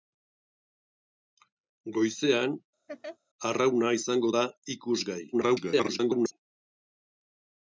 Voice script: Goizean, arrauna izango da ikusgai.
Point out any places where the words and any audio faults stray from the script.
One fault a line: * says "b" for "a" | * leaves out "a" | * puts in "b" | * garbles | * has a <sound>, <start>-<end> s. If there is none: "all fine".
* has a laugh, 2.9-3.2 s
* garbles